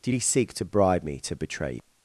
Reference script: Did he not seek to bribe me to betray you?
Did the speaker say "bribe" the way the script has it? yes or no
yes